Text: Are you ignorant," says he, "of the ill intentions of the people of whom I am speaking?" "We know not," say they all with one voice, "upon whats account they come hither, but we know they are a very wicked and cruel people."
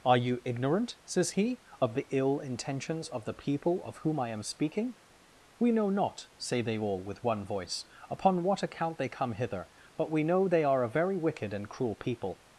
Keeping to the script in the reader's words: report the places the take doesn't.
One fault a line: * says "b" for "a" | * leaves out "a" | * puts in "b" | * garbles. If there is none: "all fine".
* says "what" for "whats"